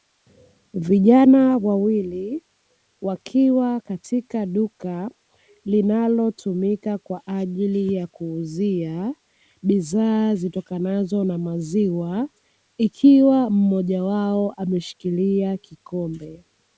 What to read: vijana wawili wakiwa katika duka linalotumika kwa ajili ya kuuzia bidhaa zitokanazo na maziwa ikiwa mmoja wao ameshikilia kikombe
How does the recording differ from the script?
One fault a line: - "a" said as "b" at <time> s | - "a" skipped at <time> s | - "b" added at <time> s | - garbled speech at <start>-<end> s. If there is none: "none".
none